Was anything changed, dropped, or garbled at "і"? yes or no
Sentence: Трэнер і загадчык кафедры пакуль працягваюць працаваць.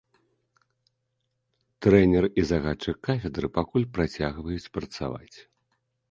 no